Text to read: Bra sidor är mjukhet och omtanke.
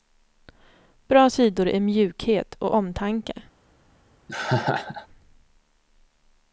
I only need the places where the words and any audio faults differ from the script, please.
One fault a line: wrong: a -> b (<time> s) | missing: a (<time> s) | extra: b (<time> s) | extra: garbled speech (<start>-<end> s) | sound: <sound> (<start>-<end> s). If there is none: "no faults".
sound: laugh (4.3-5.1 s)